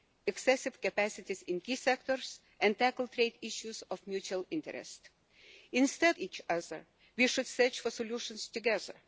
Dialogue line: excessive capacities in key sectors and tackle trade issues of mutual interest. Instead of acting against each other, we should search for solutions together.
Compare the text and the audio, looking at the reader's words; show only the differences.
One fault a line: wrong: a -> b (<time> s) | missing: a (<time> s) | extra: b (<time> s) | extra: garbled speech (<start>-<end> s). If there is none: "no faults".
missing: of acting against (6.2 s)